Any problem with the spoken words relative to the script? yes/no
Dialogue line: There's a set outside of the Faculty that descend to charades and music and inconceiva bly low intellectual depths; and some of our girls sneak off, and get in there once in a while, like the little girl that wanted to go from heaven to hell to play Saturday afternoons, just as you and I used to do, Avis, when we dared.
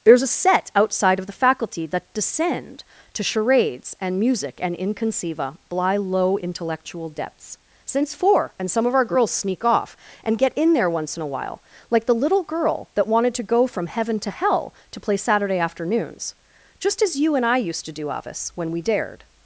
yes